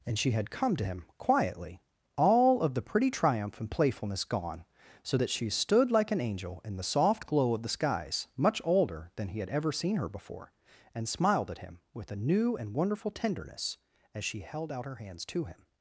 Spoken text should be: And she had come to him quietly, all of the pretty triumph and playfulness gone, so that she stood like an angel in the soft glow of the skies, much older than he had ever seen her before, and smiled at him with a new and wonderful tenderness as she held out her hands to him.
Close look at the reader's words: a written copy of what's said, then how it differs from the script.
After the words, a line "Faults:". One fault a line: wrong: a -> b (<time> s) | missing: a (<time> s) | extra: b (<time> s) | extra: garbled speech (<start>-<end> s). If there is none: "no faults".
And she had come to him quietly, all of the pretty triumph and playfulness gone, so that she stood like an angel in the soft glow of the skies, much older than he had ever seen her before, and smiled at him with a new and wonderful tenderness as she held out her hands to him.
Faults:
no faults